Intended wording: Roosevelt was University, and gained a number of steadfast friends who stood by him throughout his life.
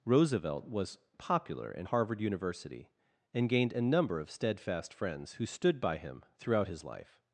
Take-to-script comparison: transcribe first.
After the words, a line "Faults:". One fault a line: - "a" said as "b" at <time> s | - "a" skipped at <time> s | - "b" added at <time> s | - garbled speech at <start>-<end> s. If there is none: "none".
Roosevelt was popular in Harvard University, and gained a number of steadfast friends who stood by him throughout his life.
Faults:
- "popular in Harvard" added at 1.2 s